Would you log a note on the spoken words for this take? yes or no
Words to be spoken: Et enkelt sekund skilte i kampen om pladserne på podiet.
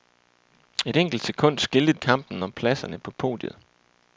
no